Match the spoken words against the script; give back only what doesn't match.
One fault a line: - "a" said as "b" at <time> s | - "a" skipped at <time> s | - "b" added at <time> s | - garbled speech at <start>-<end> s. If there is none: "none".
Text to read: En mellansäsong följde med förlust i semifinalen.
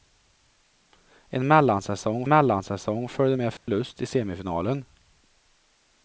- "mellansäsong" added at 2.3 s